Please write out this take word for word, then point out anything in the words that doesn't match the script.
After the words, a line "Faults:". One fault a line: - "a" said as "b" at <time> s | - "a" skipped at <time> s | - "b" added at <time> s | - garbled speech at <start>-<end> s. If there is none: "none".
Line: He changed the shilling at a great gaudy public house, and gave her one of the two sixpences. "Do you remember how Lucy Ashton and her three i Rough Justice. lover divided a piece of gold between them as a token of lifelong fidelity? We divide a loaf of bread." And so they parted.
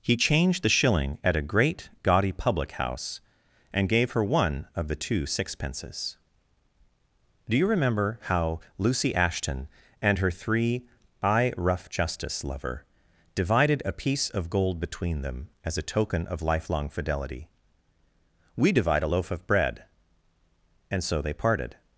He changed the shilling at a great gaudy public house, and gave her one of the two sixpences. "Do you remember how Lucy Ashton and her three i Rough Justice. lover divided a piece of gold between them as a token of lifelong fidelity? We divide a loaf of bread." And so they parted.
Faults:
none